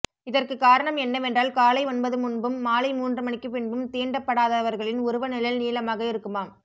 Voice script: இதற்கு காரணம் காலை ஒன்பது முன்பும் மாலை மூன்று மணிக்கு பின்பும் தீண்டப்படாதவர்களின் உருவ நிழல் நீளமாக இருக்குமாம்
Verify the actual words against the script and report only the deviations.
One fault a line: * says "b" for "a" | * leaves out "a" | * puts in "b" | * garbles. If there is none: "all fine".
* puts in "என்னவென்றால்"